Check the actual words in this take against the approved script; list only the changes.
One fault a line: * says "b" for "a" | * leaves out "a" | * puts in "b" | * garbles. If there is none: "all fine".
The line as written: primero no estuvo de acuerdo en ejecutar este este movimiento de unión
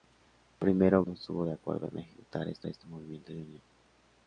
all fine